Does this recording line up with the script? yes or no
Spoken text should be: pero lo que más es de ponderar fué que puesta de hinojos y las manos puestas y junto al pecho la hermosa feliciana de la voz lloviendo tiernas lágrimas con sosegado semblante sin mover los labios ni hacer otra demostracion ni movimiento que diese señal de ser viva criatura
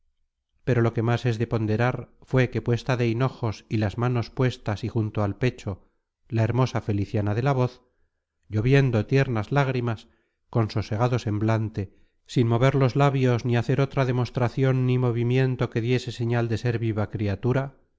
yes